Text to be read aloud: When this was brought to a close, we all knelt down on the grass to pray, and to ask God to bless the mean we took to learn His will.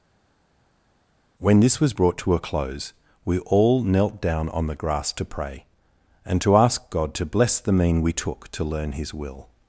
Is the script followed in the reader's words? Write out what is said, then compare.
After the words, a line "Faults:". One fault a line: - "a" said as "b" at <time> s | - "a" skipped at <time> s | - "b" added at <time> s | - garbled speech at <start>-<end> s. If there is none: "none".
When this was brought to a close, we all knelt down on the grass to pray, and to ask God to bless the mean we took to learn His will.
Faults:
none